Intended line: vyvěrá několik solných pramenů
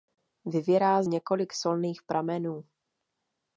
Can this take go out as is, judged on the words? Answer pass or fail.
pass